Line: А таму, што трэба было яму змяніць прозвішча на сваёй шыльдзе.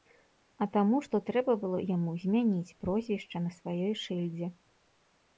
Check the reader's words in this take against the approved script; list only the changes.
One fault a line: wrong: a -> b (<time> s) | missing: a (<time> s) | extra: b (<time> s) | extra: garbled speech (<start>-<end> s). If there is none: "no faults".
no faults